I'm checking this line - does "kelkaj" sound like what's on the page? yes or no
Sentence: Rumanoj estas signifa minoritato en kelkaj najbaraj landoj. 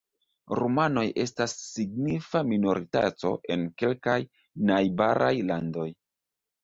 yes